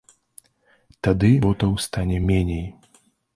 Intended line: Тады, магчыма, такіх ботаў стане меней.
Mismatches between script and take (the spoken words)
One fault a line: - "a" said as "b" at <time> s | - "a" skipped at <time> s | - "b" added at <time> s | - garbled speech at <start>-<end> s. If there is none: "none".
- "магчыма такіх" skipped at 1.3 s